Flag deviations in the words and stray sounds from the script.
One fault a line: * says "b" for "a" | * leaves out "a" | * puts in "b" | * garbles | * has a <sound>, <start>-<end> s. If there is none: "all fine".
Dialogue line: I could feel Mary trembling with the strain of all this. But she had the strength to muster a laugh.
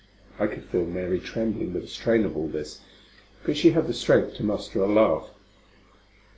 all fine